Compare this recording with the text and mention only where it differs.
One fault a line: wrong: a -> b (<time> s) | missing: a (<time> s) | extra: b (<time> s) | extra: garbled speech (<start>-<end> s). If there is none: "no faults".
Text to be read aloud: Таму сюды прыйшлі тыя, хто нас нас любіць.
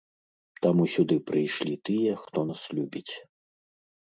missing: нас (2.6 s)